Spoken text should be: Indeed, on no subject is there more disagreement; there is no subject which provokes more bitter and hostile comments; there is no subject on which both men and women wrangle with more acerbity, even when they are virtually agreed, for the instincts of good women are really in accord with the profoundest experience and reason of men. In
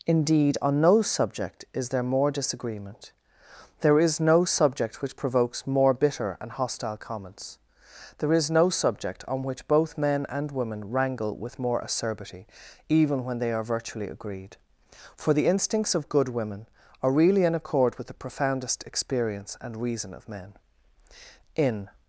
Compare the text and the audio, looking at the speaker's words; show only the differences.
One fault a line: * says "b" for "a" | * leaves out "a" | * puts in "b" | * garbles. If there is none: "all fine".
all fine